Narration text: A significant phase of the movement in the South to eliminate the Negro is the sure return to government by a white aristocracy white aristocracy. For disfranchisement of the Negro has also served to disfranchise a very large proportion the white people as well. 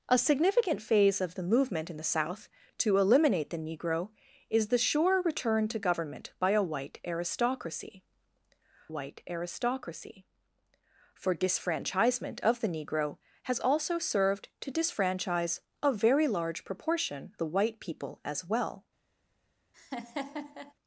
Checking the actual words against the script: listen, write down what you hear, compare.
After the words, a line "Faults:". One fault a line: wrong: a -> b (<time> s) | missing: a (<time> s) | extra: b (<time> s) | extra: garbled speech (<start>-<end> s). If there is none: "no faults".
A significant phase of the movement in the South to eliminate the Negro is the sure return to government by a white aristocracy white aristocracy. For disfranchisement of the Negro has also served to disfranchise a very large proportion the white people as well.
Faults:
no faults